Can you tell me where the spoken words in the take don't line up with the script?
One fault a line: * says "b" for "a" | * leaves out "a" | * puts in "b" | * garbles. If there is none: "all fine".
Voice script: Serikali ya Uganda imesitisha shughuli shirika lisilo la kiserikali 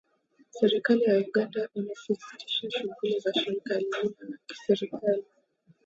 * puts in "za"